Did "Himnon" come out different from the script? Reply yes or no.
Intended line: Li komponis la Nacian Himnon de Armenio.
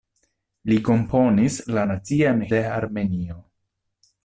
yes